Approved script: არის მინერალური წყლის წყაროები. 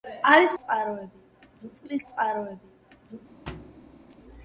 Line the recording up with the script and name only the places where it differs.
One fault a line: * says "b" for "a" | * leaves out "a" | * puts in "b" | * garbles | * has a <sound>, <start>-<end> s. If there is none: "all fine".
* says "წყაროები" for "მინერალური"
* has a thud, 3.5-4.2 s